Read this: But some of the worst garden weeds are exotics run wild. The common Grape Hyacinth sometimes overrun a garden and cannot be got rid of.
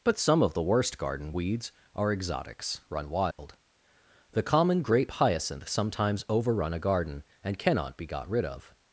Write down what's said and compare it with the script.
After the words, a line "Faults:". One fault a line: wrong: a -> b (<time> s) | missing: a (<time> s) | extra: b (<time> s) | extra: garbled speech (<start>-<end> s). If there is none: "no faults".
But some of the worst garden weeds are exotics run wild. The common Grape Hyacinth sometimes overrun a garden and cannot be got rid of.
Faults:
no faults